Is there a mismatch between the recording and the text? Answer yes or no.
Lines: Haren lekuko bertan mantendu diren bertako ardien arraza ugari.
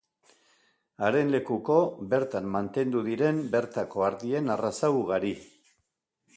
no